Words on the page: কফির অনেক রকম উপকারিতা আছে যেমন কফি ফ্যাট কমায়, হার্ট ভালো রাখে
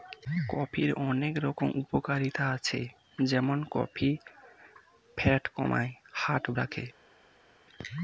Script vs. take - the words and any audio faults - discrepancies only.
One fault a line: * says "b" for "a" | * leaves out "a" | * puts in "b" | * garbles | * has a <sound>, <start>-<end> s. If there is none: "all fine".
* leaves out "ভালো"